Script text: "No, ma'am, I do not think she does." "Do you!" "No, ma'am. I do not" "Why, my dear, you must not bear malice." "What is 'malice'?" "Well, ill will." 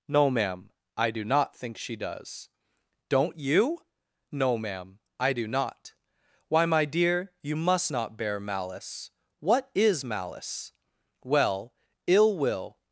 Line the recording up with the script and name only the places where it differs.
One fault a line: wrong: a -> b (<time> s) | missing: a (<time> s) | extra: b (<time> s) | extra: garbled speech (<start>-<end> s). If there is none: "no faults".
wrong: Do -> Don't (3.1 s)